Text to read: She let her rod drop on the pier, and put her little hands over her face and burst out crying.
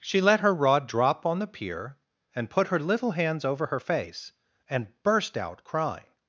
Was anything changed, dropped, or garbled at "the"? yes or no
no